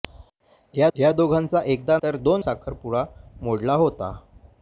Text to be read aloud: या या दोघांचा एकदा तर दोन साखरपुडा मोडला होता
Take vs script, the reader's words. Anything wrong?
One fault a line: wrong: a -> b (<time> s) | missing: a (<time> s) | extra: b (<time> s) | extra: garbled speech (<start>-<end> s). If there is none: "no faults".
no faults